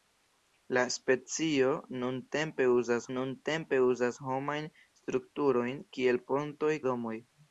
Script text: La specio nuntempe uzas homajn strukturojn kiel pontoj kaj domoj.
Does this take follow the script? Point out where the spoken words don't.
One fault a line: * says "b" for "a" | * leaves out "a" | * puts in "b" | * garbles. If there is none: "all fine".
* puts in "nuntempe uzas"
* leaves out "kaj"